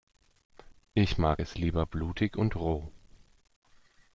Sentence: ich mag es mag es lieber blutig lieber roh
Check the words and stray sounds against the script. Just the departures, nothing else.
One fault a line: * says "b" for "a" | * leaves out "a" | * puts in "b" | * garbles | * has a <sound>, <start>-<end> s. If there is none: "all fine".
* leaves out "mag es"
* says "und" for "lieber"